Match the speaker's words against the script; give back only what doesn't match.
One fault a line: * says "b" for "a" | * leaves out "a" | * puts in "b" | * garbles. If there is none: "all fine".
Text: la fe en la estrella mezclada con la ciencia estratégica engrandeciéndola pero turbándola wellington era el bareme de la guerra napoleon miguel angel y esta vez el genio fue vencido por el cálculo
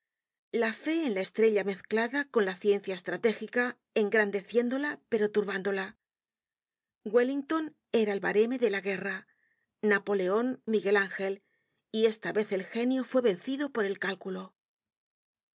all fine